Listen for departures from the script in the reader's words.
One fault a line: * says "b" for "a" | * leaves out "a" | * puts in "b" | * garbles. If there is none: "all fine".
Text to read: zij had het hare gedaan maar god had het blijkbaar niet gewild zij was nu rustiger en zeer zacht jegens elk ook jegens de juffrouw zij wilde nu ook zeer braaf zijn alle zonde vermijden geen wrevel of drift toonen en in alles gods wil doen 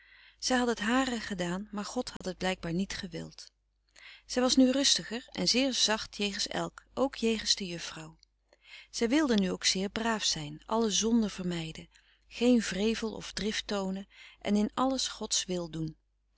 all fine